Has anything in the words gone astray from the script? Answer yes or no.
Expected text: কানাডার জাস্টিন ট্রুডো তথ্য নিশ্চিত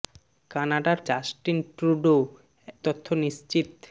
no